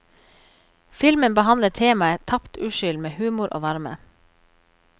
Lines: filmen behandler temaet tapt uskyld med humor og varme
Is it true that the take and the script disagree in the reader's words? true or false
false